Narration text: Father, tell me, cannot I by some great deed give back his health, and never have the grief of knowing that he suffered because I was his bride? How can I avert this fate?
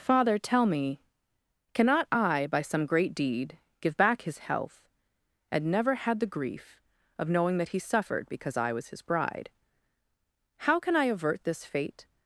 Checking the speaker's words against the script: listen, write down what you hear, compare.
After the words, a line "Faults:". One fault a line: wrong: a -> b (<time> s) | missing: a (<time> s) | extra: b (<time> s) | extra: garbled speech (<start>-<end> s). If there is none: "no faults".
Father, tell me, cannot I by some great deed give back his health, and never had the grief of knowing that he suffered because I was his bride? How can I avert this fate?
Faults:
wrong: have -> had (5.9 s)